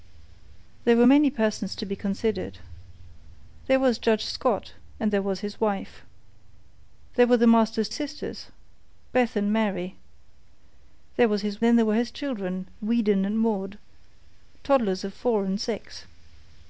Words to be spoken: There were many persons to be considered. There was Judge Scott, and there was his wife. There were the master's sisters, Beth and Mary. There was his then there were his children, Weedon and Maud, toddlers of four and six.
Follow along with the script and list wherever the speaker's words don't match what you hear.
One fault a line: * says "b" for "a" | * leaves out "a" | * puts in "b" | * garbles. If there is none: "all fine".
all fine